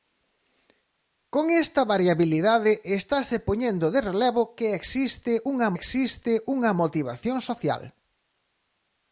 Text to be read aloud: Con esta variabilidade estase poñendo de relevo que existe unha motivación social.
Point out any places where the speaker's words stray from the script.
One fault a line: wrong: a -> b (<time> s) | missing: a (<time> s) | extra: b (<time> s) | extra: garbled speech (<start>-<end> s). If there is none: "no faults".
extra: existe unha (5.8 s)